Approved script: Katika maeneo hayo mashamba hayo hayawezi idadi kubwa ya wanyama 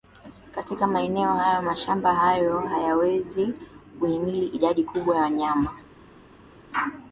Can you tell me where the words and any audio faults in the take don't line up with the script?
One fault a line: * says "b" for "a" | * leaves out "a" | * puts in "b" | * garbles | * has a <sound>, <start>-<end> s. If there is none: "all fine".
* puts in "kuhimili"